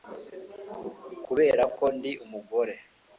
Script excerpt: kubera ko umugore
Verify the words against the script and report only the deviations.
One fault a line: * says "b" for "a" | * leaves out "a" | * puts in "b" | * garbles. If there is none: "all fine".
* puts in "ndi"